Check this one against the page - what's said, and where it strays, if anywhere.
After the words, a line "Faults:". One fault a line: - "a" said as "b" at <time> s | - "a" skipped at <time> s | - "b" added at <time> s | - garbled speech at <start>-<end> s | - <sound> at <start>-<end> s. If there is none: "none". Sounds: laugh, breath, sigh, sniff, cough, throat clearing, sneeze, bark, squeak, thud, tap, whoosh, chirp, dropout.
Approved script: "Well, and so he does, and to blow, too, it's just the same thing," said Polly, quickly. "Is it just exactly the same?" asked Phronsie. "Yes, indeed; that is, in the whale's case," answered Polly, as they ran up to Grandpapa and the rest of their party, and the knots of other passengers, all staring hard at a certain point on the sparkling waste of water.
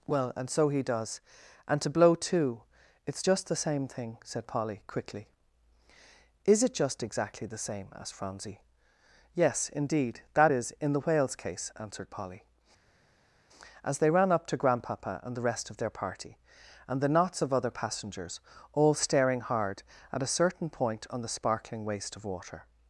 "Well, and so he does, and to blow, too, it's just the same thing," said Polly, quickly. "Is it just exactly the same?" asked Phronsie. "Yes, indeed; that is, in the whale's case," answered Polly, as they ran up to Grandpapa and the rest of their party, and the knots of other passengers, all staring hard at a certain point on the sparkling waste of water.
Faults:
none